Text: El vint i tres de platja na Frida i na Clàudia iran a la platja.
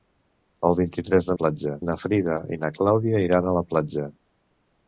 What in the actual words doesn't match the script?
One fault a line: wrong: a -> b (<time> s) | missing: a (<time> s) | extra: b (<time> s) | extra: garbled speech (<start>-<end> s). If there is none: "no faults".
no faults